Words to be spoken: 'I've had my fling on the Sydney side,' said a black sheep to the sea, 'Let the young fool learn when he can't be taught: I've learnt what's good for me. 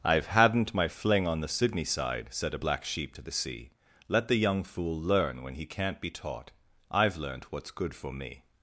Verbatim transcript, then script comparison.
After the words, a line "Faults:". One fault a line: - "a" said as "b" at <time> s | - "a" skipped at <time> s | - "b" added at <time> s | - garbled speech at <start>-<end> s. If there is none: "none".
'I've hadn't my fling on the Sydney side,' said a black sheep to the sea, 'Let the young fool learn when he can't be taught: I've learnt what's good for me.
Faults:
- "had" said as "hadn't" at 0.3 s